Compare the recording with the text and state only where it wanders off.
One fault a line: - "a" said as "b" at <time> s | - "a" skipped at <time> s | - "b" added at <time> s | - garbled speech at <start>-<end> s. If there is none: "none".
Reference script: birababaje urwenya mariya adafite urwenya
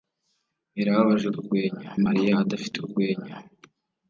none